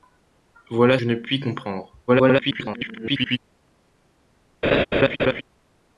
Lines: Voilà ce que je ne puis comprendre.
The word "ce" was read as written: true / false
false